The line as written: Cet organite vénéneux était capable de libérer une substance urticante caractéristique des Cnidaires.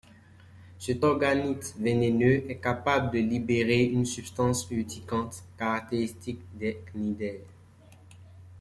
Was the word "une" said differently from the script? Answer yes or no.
no